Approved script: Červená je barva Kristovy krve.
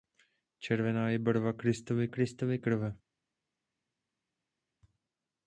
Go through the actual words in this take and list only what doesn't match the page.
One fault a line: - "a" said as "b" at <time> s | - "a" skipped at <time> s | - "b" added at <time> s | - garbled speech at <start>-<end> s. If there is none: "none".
- "Kristovy" added at 2.1 s